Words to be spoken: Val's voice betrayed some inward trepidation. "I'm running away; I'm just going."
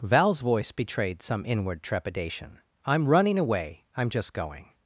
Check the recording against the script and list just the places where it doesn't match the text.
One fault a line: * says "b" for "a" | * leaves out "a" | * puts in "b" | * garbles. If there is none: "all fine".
all fine